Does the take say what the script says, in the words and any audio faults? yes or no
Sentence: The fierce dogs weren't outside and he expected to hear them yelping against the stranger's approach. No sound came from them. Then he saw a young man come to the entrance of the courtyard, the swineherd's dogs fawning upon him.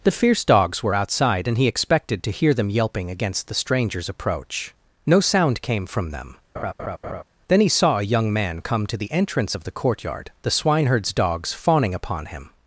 no